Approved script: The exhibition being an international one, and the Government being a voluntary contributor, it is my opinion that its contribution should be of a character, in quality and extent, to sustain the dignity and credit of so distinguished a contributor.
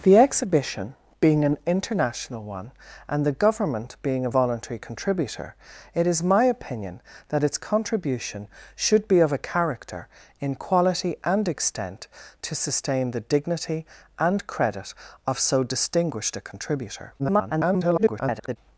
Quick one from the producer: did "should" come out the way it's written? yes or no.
yes